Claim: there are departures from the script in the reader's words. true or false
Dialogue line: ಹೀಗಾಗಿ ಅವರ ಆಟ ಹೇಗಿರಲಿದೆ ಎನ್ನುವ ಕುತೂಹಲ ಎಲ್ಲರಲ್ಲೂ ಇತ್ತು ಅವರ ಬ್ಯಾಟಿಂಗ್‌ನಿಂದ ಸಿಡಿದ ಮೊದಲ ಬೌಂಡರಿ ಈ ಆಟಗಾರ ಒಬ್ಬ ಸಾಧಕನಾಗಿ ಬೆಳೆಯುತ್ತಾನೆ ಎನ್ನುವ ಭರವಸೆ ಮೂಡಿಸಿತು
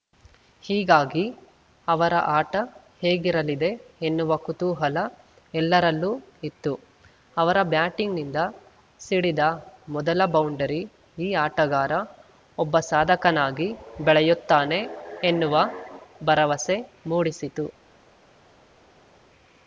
false